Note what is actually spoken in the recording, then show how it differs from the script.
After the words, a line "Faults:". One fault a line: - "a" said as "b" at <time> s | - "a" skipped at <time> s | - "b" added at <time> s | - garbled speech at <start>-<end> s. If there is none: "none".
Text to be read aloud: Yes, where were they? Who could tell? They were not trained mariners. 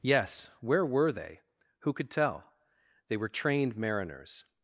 Yes, where were they? Who could tell? They were trained mariners.
Faults:
- "not" skipped at 3.3 s